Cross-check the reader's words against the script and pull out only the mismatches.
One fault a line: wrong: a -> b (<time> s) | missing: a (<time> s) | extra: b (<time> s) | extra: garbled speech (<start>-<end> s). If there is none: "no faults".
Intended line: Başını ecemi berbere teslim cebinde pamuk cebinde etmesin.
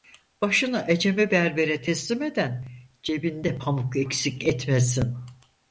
extra: eden (2.2 s)
wrong: cebinde -> eksik (4.0 s)